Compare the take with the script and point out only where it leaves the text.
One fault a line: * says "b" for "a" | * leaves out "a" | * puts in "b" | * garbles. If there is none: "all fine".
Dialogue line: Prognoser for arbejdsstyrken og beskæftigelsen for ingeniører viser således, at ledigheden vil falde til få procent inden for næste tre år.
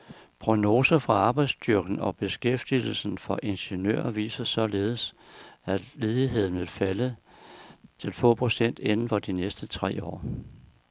* puts in "de"